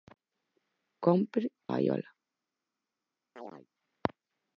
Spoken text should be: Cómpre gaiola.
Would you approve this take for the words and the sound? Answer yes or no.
no